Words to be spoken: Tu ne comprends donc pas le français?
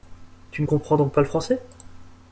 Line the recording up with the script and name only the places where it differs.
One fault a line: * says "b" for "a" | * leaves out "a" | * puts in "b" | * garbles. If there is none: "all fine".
all fine